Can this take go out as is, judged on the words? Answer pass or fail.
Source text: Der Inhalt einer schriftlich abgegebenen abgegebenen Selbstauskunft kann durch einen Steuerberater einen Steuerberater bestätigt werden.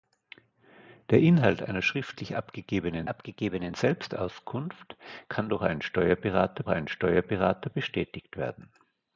pass